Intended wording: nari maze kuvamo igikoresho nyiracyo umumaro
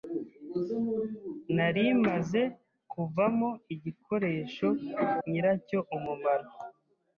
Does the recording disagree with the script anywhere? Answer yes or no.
no